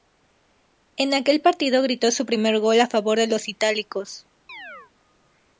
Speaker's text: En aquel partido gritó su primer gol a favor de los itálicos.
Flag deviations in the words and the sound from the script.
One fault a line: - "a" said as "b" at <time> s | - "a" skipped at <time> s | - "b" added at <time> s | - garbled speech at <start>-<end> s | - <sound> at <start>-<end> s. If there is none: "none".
- chirp at 4.5-4.9 s